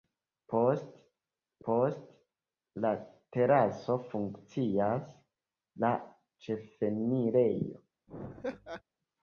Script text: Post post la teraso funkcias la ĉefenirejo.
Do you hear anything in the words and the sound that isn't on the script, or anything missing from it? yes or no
yes